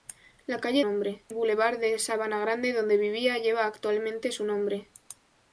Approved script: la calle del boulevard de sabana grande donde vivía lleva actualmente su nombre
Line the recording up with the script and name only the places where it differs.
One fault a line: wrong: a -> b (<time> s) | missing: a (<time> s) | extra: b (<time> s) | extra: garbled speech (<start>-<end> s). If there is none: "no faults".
wrong: del -> nombre (0.8 s)